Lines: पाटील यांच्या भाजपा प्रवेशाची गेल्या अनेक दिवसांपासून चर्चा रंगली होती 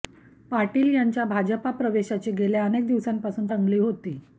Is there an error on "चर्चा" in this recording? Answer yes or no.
yes